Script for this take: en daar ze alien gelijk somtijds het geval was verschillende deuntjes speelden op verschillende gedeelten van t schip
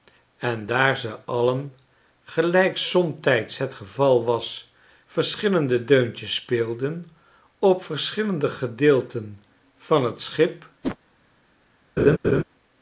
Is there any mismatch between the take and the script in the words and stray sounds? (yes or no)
yes